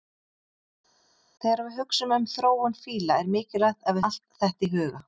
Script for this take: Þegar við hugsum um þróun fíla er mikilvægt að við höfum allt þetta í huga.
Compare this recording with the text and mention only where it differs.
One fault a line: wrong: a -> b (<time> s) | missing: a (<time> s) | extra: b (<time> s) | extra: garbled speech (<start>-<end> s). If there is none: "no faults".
missing: við höfum (4.0 s)